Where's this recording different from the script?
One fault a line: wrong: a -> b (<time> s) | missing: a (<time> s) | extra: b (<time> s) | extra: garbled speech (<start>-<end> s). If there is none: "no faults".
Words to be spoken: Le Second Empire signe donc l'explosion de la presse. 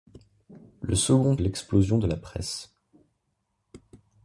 missing: Empire signe donc (1.4 s)